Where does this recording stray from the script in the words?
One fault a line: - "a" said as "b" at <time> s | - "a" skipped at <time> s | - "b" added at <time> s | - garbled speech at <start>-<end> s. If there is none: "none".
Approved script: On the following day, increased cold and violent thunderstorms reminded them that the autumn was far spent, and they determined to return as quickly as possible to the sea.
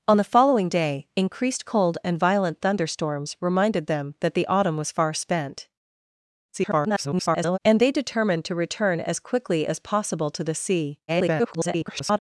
- garbled speech at 6.5-7.6 s
- garbled speech at 11.1-12.2 s